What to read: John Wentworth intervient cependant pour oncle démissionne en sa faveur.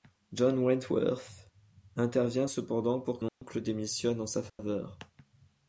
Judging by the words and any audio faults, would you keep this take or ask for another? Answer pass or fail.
fail